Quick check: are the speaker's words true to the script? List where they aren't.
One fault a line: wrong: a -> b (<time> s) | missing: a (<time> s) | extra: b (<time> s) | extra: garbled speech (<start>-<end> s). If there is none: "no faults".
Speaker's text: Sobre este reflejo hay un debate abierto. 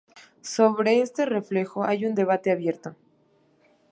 no faults